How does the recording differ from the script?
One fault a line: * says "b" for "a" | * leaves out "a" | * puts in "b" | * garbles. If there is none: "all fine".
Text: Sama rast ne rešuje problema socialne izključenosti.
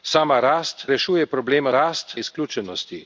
* leaves out "ne"
* says "rast" for "socialne"